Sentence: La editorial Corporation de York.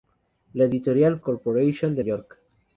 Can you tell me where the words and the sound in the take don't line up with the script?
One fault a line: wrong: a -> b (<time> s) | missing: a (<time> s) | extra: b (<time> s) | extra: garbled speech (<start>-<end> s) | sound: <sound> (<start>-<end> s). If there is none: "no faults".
no faults